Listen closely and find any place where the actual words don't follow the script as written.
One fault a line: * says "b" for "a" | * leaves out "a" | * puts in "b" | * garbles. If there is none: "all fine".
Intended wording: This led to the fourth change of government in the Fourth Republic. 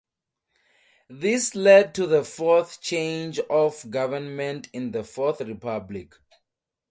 all fine